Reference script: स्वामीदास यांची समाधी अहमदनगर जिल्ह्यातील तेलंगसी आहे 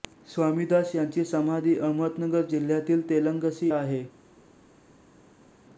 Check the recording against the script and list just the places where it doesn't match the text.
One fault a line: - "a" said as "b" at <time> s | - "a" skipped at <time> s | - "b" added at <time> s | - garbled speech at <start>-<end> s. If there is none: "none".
none